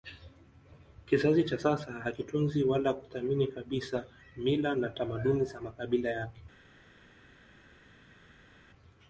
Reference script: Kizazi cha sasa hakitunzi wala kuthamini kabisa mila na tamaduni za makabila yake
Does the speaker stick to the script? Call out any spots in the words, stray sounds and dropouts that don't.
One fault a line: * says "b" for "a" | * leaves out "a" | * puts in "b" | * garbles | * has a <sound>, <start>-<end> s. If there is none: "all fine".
all fine